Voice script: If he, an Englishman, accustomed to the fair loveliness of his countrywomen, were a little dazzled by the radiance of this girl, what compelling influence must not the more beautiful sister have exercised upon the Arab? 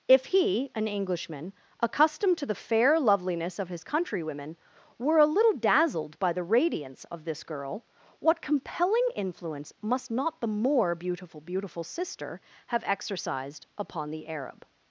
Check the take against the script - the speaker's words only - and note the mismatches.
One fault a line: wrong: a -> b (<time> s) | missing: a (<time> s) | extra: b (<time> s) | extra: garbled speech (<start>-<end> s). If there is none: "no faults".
extra: beautiful (11.4 s)